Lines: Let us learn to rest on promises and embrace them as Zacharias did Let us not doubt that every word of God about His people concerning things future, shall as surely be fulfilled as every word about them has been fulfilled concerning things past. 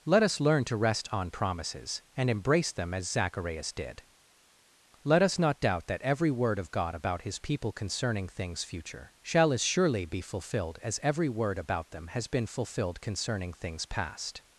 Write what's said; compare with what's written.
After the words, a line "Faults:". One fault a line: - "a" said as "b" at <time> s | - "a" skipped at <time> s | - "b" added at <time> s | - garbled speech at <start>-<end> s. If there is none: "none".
Let us learn to rest on promises and embrace them as Zacharias did Let us not doubt that every word of God about His people concerning things future, shall as surely be fulfilled as every word about them has been fulfilled concerning things past.
Faults:
none